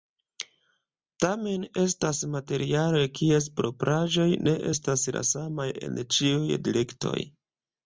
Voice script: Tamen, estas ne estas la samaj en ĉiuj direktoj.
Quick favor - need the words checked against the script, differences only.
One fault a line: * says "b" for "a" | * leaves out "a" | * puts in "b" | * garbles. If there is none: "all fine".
* puts in "materialoj kies propraĵoj"